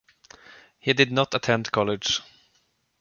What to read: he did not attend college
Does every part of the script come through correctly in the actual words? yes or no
yes